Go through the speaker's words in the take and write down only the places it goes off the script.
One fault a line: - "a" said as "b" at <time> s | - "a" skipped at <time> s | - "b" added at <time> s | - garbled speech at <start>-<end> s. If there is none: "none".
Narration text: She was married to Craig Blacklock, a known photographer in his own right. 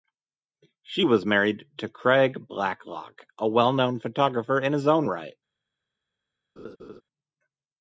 - "well" added at 3.5 s